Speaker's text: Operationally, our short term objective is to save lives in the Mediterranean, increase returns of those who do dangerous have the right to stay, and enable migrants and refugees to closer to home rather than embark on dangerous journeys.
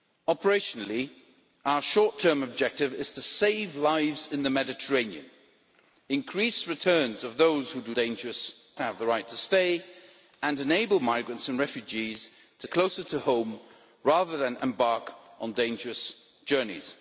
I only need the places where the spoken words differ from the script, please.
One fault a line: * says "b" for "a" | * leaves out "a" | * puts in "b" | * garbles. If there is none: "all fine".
all fine